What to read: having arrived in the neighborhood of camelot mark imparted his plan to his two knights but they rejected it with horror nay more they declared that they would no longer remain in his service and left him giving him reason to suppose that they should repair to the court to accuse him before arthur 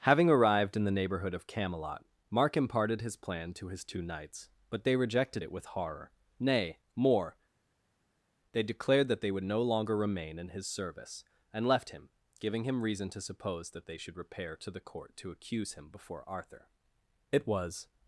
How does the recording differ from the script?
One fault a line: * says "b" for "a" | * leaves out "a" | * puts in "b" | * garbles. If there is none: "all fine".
* puts in "it was"